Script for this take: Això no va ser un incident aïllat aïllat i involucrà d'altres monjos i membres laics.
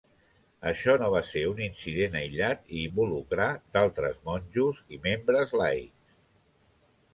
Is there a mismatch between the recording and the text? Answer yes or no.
yes